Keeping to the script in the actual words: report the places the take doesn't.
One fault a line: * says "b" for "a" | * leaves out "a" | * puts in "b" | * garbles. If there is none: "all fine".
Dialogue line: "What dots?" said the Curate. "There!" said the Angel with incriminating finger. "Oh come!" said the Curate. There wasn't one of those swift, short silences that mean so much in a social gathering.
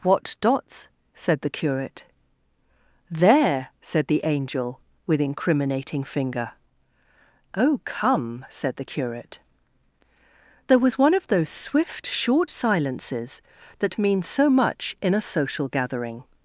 * says "was" for "wasn't"